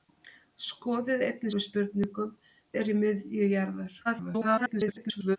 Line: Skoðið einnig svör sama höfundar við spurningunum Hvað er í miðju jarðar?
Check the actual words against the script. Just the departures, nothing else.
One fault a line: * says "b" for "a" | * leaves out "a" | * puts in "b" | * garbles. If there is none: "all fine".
* leaves out "svör sama höfundar"
* leaves out "Hvað"
* garbles